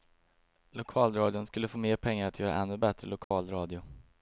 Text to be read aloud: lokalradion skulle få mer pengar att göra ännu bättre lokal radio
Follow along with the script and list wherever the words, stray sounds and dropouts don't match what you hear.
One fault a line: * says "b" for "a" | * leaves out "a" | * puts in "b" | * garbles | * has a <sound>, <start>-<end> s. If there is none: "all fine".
* has a dropout, 3.2-3.3 s